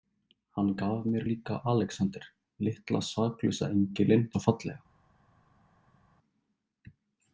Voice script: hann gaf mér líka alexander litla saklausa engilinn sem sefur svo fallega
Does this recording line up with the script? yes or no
no